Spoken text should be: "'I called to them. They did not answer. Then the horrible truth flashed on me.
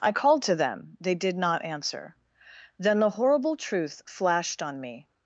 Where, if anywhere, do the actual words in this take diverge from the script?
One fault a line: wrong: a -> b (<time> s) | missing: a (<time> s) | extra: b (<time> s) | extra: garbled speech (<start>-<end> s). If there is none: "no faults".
no faults